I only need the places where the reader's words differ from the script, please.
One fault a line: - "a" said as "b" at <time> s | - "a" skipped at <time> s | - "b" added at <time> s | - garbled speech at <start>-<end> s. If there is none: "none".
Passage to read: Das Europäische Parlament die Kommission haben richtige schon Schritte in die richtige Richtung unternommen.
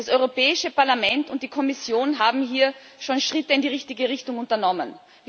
- "und" added at 1.3 s
- "richtige" said as "hier" at 2.5 s